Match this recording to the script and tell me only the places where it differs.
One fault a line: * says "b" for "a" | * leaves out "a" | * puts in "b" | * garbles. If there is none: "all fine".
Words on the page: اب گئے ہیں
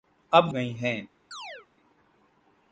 all fine